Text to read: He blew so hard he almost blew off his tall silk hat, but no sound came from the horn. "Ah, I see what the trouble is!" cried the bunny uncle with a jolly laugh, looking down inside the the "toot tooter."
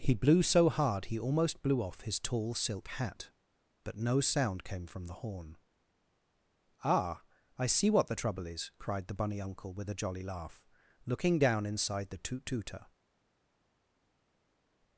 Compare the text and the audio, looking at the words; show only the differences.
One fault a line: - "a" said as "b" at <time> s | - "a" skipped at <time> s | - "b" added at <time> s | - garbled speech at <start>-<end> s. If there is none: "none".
- "the" skipped at 12.2 s